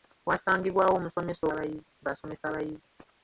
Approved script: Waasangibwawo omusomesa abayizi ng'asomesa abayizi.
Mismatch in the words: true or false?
false